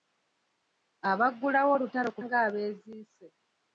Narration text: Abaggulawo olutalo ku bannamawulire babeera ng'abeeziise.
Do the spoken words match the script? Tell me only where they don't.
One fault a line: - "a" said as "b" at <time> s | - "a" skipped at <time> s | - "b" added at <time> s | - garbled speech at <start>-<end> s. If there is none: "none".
- "bannamawulire babeera" skipped at 2.2 s